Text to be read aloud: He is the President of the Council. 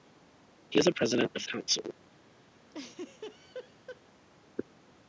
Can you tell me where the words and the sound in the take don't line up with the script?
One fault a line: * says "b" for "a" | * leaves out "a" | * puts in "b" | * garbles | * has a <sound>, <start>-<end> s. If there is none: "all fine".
* has a laugh, 2.7-4.0 s